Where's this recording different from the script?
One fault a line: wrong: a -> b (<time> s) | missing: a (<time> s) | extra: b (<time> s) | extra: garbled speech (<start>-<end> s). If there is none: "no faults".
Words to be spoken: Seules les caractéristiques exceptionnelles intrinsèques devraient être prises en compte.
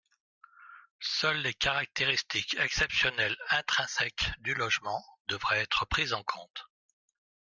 extra: du logement (4.4 s)